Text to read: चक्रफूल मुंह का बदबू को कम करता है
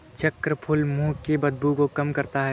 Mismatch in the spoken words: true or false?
true